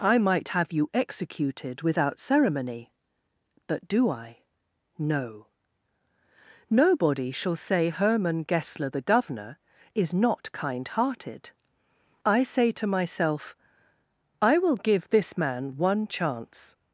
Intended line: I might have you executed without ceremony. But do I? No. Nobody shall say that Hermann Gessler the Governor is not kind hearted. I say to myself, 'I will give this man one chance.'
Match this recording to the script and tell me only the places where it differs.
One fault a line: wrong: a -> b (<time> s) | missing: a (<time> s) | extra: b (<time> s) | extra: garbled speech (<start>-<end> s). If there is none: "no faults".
missing: that (7.9 s)